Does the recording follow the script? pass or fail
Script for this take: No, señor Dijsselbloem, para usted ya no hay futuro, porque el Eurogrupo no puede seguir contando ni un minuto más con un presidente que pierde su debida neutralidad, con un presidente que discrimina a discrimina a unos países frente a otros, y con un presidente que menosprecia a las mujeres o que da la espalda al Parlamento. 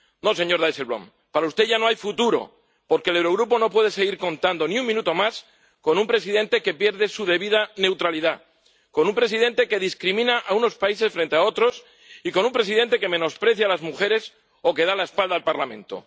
fail